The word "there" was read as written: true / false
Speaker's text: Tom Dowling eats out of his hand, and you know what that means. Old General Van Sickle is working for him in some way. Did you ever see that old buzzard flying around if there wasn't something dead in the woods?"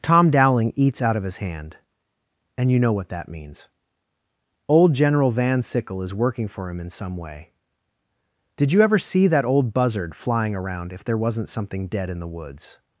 true